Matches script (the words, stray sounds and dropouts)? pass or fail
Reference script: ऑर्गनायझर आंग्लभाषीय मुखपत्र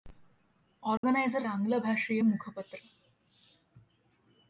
fail